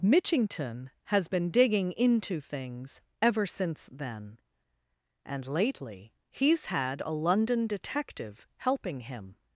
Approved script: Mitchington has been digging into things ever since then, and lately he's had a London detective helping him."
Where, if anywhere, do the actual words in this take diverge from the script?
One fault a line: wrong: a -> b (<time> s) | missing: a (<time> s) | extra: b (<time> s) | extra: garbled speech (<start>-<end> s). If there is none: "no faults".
no faults